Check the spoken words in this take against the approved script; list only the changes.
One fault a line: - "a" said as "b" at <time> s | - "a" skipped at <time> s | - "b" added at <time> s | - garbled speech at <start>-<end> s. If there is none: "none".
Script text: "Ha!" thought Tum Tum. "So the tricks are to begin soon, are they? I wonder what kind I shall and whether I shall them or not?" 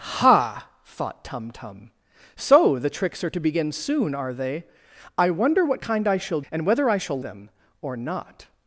none